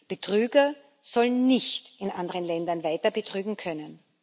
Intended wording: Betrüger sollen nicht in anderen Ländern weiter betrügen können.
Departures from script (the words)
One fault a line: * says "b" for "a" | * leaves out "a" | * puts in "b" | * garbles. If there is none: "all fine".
all fine